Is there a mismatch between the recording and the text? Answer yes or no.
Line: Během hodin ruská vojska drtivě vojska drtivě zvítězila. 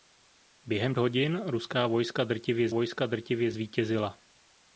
no